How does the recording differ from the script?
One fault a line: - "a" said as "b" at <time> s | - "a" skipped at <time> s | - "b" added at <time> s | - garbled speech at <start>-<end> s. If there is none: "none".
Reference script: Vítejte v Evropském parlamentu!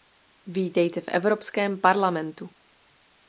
none